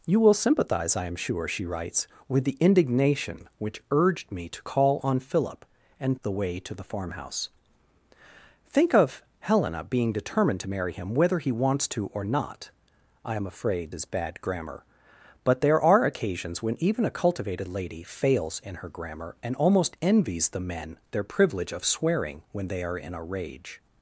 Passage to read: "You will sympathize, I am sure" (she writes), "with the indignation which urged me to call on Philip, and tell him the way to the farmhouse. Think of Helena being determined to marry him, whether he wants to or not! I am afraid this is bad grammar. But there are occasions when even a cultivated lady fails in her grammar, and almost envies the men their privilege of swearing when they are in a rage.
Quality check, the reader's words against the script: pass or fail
fail